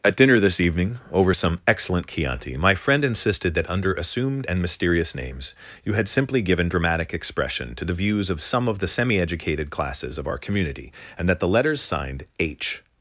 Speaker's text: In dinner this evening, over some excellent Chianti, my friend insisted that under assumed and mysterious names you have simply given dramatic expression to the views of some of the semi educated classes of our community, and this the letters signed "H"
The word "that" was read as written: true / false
true